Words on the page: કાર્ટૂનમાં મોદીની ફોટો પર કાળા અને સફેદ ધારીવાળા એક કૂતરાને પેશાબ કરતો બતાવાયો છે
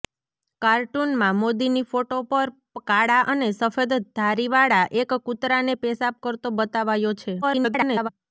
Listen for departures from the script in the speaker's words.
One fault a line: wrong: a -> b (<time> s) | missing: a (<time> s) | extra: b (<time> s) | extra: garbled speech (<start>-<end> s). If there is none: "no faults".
extra: garbled speech (7.4-8.1 s)